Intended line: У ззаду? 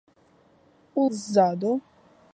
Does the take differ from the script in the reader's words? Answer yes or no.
no